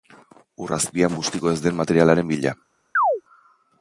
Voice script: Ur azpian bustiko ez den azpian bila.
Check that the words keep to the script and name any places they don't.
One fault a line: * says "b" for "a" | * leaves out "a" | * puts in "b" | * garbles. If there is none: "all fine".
* says "materialaren" for "azpian"